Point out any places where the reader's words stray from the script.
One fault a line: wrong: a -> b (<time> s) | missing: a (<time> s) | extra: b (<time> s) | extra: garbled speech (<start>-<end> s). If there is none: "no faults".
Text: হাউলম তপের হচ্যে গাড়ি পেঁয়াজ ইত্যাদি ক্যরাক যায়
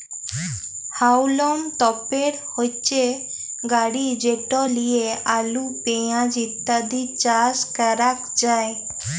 extra: যেট লিয়ে আলু (4.2 s)
extra: চাস (7.2 s)